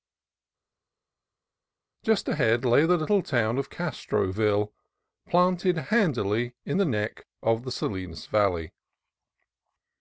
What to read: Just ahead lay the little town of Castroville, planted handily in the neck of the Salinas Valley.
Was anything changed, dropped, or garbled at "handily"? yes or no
no